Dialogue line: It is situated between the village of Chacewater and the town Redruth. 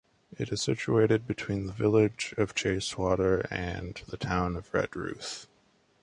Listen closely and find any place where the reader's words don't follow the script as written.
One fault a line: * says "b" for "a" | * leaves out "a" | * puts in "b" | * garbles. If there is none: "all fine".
* puts in "of"